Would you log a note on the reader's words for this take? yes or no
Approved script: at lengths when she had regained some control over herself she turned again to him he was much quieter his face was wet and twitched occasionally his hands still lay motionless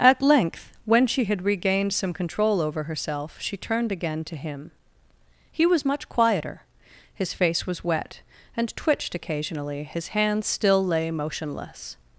yes